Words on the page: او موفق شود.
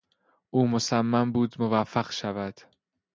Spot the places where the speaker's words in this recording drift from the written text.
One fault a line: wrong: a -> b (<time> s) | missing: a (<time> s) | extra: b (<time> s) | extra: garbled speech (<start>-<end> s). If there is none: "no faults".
extra: مصمم بود (0.7 s)